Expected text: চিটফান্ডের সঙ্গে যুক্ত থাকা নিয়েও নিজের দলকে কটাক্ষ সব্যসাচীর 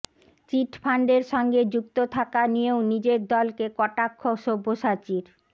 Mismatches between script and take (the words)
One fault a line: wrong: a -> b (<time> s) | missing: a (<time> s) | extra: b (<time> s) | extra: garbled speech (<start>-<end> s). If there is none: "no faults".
no faults